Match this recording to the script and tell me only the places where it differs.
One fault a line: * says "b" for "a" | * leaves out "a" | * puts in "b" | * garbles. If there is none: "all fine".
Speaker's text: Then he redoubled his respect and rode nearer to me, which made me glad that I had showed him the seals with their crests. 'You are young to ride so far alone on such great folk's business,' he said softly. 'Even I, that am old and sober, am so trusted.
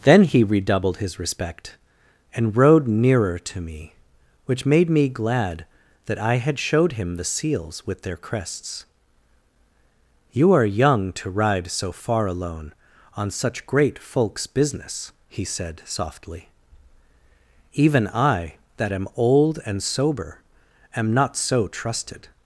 * puts in "not"